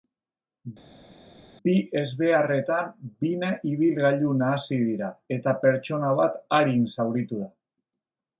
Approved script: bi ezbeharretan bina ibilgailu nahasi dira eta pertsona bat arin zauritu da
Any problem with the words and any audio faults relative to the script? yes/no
no